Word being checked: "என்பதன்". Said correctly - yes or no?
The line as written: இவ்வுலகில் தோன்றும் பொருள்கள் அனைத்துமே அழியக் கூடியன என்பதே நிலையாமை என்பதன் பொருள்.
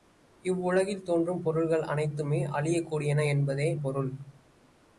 no